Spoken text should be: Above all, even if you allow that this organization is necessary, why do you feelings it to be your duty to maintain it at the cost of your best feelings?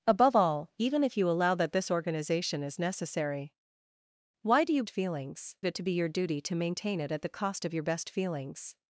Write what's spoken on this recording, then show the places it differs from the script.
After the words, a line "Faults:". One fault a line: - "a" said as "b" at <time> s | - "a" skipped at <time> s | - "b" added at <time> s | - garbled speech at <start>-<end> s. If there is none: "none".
Above all, even if you allow that this organization is necessary, why do you feelings it to be your duty to maintain it at the cost of your best feelings?
Faults:
none